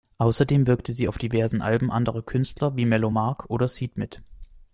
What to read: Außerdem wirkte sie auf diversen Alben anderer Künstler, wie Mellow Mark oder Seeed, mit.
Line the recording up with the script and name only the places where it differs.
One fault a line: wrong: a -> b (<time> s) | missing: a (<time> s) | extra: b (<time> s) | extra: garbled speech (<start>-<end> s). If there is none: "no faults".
no faults